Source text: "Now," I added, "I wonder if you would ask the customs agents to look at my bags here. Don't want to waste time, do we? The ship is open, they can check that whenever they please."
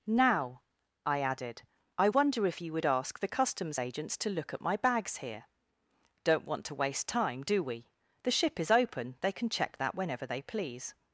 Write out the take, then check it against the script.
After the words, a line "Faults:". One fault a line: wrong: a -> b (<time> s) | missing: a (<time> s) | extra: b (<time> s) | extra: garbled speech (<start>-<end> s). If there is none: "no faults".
"Now," I added, "I wonder if you would ask the customs agents to look at my bags here. Don't want to waste time, do we? The ship is open, they can check that whenever they please."
Faults:
no faults